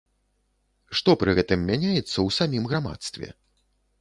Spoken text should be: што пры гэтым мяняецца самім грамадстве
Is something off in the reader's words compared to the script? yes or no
yes